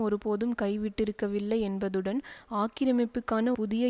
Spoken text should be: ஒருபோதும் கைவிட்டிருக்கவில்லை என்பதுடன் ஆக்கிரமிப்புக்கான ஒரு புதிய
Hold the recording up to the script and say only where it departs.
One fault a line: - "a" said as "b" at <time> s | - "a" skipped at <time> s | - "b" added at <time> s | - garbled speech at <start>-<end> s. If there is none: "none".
- "ஒரு" skipped at 3.5 s